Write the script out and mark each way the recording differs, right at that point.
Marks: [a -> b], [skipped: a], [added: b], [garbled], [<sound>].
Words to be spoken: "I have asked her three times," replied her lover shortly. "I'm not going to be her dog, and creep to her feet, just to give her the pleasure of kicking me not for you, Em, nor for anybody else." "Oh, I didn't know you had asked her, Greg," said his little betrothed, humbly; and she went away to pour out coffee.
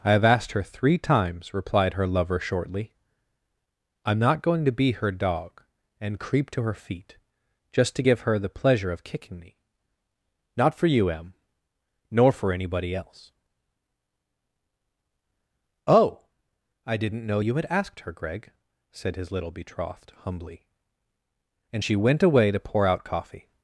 "I have asked her three times," replied her lover shortly. "I'm not going to be her dog, and creep to her feet, just to give her the pleasure of kicking me not for you, Em, nor for anybody else." "Oh, I didn't know you had asked her, Greg," said his little betrothed, humbly; and she went away to pour out coffee.